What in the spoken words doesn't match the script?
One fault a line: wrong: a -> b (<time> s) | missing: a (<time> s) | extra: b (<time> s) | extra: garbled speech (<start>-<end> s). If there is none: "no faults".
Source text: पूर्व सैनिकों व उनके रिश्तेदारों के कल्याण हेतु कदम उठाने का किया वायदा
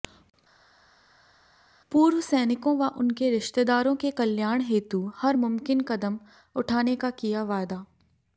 extra: हर मुमकिन (5.1 s)